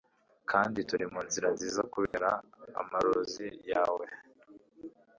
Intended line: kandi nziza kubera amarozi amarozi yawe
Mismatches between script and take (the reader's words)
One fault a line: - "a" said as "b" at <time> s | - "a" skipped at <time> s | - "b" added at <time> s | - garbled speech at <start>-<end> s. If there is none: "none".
- "turi munzira" added at 0.9 s
- "amarozi" skipped at 3.5 s